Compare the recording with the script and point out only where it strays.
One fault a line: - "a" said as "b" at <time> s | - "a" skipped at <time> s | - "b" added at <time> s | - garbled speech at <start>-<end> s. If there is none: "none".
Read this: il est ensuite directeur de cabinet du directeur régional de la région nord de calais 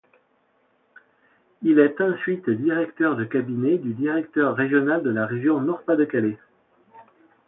- "pas" added at 5.8 s